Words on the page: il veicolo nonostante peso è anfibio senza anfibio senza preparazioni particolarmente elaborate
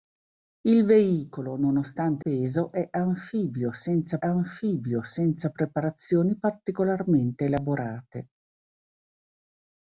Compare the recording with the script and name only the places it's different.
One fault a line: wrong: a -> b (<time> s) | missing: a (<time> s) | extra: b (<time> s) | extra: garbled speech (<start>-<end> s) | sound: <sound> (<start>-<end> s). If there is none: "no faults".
no faults